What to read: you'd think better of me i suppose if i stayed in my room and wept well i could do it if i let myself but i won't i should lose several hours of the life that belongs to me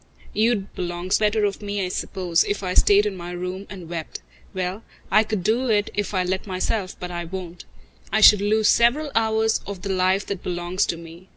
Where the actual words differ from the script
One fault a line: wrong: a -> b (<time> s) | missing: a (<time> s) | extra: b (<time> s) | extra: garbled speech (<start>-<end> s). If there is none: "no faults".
wrong: think -> belongs (0.8 s)